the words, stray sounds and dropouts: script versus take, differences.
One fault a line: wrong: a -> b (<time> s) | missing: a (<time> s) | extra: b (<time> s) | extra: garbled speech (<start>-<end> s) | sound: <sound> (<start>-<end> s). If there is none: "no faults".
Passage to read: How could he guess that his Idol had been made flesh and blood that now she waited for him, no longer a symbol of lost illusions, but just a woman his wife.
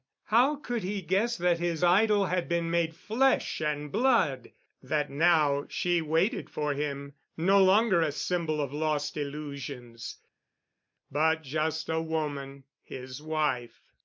no faults